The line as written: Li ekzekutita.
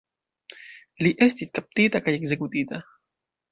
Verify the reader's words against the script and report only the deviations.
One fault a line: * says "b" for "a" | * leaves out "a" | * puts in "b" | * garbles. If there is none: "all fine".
* puts in "estis kaptita kaj"